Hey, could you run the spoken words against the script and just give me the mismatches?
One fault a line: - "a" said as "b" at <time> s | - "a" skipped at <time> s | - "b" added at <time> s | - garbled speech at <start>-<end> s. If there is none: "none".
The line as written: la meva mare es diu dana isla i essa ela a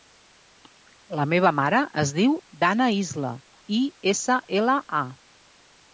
none